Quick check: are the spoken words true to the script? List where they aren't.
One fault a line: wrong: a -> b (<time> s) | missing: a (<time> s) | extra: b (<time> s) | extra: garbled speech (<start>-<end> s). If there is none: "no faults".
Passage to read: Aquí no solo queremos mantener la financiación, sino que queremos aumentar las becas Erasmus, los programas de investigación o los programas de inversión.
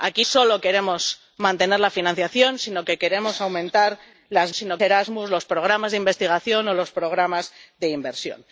missing: no (0.2 s)
wrong: becas -> sino (4.5 s)